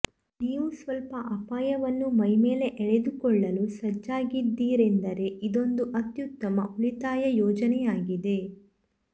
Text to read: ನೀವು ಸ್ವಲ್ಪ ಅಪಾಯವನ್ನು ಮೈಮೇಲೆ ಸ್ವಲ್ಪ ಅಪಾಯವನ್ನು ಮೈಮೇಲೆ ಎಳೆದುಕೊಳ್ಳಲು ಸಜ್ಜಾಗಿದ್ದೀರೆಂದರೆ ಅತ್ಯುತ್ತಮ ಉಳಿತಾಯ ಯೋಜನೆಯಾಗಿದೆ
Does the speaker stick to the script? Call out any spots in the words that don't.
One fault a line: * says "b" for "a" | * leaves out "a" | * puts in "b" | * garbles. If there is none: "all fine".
* leaves out "ಸ್ವಲ್ಪ ಅಪಾಯವನ್ನು ಮೈಮೇಲೆ"
* puts in "ಇದೊಂದು"